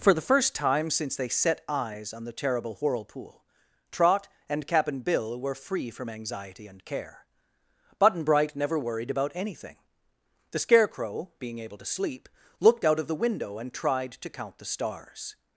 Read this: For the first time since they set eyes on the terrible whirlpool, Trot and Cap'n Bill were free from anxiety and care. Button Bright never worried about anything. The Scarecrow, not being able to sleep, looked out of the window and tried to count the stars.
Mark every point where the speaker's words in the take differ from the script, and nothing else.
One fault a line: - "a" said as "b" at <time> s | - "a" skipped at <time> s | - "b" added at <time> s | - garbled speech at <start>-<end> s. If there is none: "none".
- "not" skipped at 11.3 s